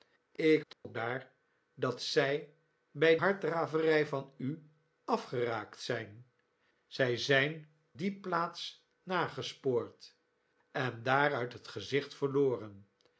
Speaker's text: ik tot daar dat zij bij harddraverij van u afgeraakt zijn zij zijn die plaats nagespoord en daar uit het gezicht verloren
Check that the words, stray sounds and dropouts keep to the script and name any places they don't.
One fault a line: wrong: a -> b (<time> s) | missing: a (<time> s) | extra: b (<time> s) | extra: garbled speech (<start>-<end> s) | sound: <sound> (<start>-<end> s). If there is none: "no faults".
sound: dropout (0.7-0.8 s)